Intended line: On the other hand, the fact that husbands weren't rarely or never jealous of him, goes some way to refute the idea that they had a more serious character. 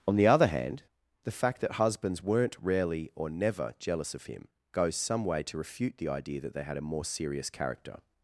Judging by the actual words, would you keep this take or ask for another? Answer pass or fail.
pass